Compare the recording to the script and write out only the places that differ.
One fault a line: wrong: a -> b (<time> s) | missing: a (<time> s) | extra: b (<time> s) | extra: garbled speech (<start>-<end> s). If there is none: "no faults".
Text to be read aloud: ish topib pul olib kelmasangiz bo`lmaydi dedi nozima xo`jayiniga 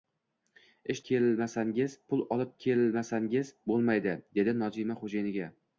wrong: topib -> kelmasangiz (1.1 s)